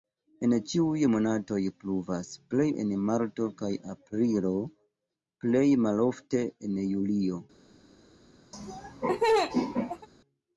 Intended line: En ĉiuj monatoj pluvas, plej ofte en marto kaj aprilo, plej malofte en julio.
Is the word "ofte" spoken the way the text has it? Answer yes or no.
no